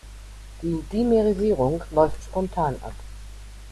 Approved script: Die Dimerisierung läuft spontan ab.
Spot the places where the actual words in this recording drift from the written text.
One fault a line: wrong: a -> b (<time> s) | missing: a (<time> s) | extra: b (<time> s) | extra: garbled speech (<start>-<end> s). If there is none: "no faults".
no faults